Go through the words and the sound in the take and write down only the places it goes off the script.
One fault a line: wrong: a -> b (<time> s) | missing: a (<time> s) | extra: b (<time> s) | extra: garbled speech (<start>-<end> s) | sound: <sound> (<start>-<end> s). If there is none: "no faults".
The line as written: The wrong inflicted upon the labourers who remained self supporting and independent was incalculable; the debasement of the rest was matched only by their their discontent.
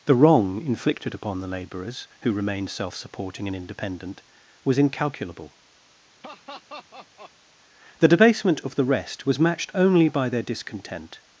sound: laugh (6.2-7.3 s)
missing: their (10.4 s)